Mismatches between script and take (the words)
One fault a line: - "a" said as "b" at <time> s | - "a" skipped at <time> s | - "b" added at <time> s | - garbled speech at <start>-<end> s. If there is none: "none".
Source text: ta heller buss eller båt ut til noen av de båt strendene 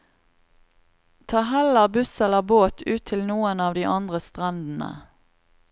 - "båt" said as "andre" at 4.0 s